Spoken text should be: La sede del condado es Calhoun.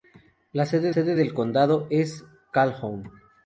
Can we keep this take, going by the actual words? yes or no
no